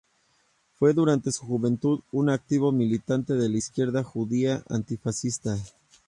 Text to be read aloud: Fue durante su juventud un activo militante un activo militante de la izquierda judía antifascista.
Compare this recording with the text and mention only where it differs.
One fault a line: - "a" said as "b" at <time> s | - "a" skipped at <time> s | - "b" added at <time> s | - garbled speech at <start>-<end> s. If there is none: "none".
- "un activo militante" skipped at 3.3 s